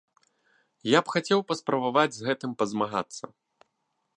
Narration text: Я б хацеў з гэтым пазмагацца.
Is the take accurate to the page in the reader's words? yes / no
no